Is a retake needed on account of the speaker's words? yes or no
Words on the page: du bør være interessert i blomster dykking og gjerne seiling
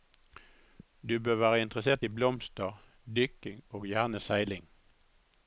no